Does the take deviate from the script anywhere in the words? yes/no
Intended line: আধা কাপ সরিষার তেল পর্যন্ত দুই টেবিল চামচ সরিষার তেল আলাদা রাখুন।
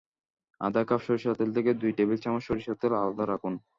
yes